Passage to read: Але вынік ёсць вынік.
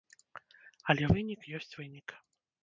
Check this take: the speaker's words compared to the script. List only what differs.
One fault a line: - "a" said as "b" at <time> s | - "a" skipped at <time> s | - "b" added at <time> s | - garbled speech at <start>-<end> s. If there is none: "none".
none